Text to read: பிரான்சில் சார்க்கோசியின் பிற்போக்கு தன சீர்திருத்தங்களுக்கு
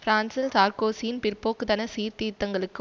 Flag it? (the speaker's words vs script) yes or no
no